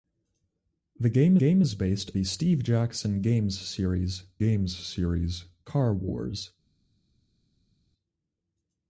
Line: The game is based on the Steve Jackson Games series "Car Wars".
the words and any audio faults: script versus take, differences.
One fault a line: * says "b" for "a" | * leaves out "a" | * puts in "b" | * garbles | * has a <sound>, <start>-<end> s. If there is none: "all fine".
* puts in "game"
* leaves out "on"
* puts in "Games series"